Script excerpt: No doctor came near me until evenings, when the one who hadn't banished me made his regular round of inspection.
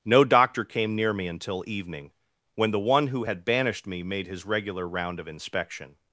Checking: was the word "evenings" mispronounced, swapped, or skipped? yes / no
yes